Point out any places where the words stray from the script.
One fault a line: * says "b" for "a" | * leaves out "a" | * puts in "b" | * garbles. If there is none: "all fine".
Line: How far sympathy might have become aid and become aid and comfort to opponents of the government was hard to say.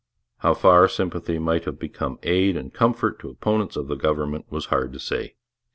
* leaves out "become aid and"